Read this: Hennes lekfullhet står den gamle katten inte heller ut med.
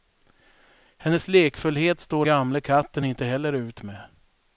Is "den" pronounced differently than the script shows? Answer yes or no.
yes